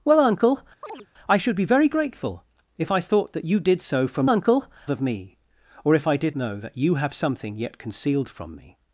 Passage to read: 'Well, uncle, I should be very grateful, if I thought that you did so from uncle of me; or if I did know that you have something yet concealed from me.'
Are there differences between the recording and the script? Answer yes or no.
no